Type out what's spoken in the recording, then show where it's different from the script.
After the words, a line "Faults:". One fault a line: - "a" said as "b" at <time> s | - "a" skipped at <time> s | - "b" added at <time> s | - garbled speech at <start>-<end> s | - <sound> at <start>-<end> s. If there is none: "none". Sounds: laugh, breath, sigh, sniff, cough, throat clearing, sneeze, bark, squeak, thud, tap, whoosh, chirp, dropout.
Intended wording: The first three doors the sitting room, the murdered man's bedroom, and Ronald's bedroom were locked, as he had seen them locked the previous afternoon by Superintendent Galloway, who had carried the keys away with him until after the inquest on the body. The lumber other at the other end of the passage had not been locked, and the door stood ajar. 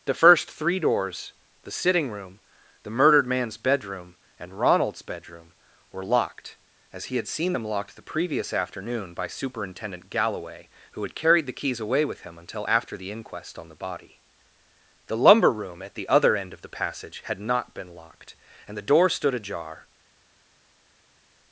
The first three doors the sitting room, the murdered man's bedroom, and Ronald's bedroom were locked, as he had seen them locked the previous afternoon by Superintendent Galloway, who had carried the keys away with him until after the inquest on the body. The lumber room at the other end of the passage had not been locked, and the door stood ajar.
Faults:
- "other" said as "room" at 15.5 s